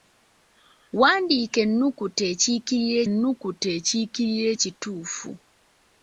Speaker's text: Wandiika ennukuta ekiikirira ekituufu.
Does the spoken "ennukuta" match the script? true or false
true